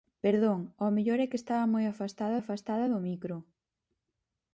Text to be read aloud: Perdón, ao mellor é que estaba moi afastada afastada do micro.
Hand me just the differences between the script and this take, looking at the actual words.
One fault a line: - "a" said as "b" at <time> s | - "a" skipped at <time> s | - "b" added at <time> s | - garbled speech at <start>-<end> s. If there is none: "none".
none